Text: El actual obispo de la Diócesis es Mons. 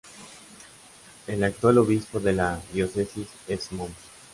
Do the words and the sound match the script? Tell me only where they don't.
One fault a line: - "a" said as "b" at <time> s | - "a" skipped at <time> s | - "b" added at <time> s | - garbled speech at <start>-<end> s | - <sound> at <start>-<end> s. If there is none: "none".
none